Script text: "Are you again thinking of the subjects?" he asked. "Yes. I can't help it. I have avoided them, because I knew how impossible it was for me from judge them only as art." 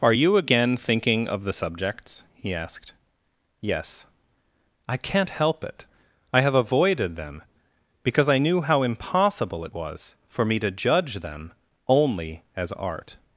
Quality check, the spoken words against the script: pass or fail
fail